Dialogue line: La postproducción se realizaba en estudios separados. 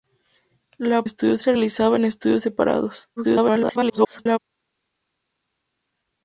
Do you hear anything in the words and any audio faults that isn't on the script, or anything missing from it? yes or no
yes